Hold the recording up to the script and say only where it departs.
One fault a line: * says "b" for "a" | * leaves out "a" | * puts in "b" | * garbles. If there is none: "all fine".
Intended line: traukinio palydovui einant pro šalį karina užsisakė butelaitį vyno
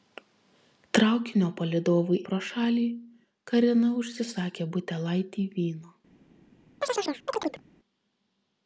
* leaves out "einant"